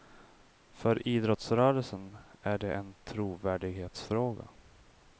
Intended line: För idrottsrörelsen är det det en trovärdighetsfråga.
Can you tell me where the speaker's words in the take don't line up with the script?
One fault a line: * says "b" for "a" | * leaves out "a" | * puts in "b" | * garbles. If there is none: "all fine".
* leaves out "det"